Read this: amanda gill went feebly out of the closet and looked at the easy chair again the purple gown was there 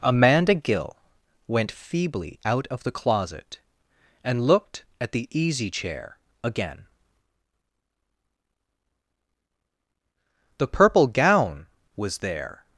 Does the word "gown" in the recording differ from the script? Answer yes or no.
no